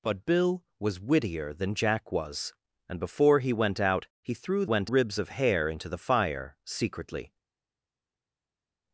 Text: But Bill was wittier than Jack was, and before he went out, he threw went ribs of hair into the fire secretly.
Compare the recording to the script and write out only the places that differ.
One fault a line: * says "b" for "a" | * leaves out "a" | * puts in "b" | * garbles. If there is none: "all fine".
all fine